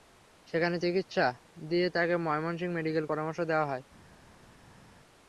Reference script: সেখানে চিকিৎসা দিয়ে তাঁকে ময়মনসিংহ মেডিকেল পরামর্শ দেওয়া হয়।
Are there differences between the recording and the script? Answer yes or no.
no